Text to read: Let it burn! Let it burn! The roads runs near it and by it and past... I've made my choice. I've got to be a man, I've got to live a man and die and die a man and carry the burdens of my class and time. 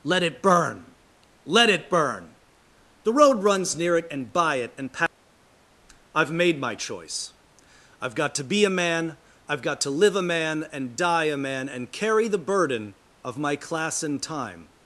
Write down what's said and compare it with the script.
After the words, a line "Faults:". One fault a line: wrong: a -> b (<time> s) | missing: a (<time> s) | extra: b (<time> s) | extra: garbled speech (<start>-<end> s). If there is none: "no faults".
Let it burn! Let it burn! The road runs near it and by it and past... I've made my choice. I've got to be a man, I've got to live a man and die a man and carry the burden of my class and time.
Faults:
wrong: roads -> road (3.1 s)
missing: and die (11.3 s)
wrong: burdens -> burden (12.4 s)